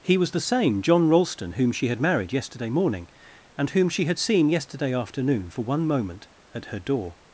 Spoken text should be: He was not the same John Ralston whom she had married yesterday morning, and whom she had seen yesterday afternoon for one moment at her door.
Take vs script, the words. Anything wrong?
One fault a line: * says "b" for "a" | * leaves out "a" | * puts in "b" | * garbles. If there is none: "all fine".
* leaves out "not"